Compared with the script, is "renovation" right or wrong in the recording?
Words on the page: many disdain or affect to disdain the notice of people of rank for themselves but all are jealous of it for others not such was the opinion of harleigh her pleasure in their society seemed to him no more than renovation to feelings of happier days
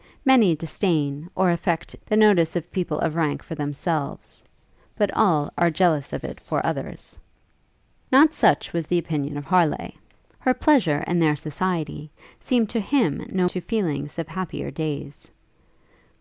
wrong